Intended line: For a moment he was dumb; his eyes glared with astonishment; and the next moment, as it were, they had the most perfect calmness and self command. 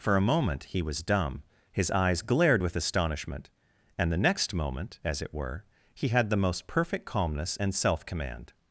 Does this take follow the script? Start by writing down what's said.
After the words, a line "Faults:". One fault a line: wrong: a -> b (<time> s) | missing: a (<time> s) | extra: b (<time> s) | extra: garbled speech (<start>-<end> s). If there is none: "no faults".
For a moment he was dumb; his eyes glared with astonishment; and the next moment, as it were, he had the most perfect calmness and self command.
Faults:
wrong: they -> he (5.9 s)